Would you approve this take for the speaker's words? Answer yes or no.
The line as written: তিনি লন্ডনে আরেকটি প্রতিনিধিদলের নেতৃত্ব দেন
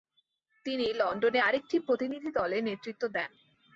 yes